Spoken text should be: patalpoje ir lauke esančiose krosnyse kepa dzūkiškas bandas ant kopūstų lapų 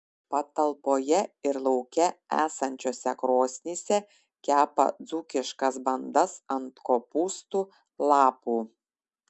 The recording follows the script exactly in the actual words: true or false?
true